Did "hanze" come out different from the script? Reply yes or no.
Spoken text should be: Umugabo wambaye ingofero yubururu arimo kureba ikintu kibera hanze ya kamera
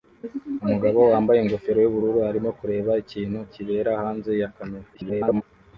no